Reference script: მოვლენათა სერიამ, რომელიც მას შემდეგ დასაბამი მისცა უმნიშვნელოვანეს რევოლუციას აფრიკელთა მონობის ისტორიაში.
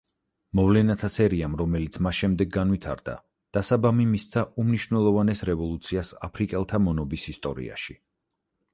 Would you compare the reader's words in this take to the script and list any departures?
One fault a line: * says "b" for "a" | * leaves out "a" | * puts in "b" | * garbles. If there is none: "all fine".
* puts in "განვითარდა"